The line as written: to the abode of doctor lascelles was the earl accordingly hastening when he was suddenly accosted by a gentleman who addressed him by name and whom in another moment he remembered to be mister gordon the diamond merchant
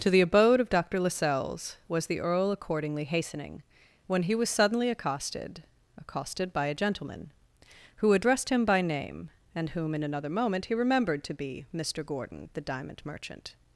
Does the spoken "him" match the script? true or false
true